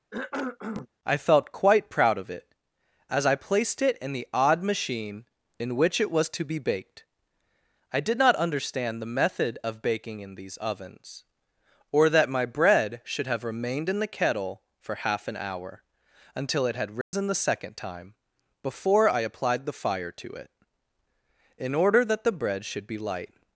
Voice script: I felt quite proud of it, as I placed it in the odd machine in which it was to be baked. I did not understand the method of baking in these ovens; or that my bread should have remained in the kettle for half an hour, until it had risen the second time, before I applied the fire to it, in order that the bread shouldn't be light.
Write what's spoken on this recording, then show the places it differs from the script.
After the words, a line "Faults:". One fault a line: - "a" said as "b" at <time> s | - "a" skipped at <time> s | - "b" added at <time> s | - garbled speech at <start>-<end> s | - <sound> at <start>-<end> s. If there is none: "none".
I felt quite proud of it, as I placed it in the odd machine in which it was to be baked. I did not understand the method of baking in these ovens; or that my bread should have remained in the kettle for half an hour, until it had risen the second time, before I applied the fire to it, in order that the bread should be light.
Faults:
- cough at 0.1-0.9 s
- dropout at 17.0-17.1 s
- "shouldn't" said as "should" at 22.6 s